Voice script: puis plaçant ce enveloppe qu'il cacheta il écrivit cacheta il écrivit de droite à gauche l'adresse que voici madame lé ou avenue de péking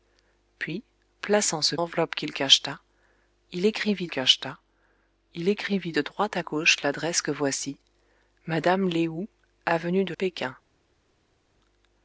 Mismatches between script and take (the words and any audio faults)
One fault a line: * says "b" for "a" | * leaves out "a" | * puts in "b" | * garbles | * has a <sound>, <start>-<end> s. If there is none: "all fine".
all fine